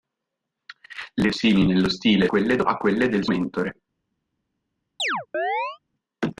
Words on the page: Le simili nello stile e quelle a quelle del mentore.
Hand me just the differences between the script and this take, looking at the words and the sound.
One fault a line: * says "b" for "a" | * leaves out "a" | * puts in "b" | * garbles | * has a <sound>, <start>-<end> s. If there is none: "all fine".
* has a chirp, 5.0-5.8 s